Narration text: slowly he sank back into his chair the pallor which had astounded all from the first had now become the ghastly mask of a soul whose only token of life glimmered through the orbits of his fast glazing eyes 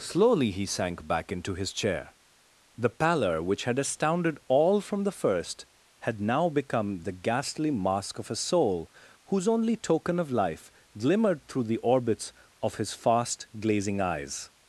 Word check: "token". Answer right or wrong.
right